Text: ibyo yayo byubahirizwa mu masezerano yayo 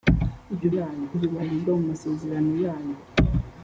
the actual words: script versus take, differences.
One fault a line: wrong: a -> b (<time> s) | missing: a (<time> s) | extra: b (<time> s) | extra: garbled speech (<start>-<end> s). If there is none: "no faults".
no faults